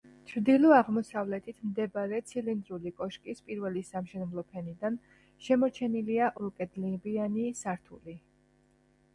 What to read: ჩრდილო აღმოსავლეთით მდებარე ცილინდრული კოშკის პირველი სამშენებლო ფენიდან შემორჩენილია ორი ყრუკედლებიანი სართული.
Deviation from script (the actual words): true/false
true